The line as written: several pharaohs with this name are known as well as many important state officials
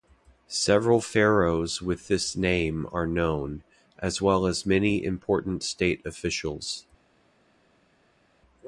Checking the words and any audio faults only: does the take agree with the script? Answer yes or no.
yes